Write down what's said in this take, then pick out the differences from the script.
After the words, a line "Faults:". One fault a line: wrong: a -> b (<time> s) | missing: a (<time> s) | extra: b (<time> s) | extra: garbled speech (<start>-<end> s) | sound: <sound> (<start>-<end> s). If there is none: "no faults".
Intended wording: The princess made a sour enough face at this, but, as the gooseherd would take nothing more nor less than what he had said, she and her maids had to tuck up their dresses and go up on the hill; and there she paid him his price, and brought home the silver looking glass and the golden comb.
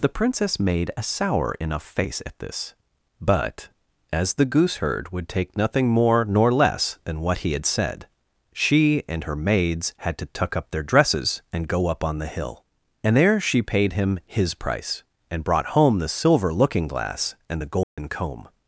The princess made a sour enough face at this, but, as the gooseherd would take nothing more nor less than what he had said, she and her maids had to tuck up their dresses and go up on the hill; and there she paid him his price, and brought home the silver looking glass and the golden comb.
Faults:
sound: dropout (17.8-18.0 s)